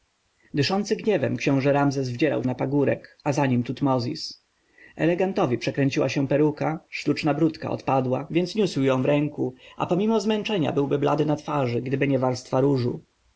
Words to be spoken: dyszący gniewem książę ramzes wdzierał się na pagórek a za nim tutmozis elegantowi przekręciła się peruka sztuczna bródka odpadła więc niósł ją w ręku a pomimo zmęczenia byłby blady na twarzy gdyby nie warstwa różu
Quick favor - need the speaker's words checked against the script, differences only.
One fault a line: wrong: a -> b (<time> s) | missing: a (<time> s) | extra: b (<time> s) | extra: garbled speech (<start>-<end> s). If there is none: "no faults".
missing: się (2.4 s)